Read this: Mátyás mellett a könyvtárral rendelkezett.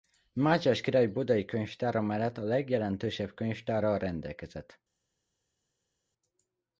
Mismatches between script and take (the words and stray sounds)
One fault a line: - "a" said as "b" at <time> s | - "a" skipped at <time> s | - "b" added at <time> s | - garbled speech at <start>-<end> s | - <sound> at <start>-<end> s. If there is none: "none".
- "király budai könyvtára" added at 0.8 s
- "legjelentősebb" added at 2.4 s